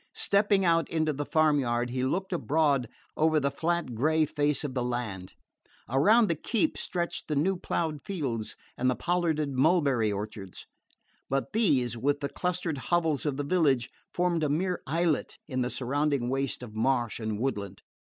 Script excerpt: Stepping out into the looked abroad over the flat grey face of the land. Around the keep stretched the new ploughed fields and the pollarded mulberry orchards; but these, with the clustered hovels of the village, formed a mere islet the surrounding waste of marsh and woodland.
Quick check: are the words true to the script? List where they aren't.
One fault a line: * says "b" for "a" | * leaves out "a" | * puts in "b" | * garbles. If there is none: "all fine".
* puts in "farm yard he"
* puts in "in"